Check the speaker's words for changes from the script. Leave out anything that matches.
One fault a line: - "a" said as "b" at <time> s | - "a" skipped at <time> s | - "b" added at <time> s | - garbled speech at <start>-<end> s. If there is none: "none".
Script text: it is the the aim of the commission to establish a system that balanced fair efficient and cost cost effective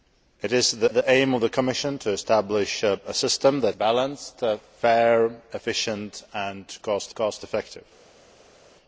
none